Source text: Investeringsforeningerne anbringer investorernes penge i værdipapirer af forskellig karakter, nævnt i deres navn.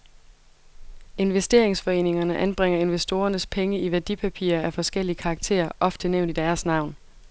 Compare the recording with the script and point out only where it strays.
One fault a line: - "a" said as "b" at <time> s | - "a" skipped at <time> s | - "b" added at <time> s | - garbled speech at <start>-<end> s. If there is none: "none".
- "ofte" added at 5.8 s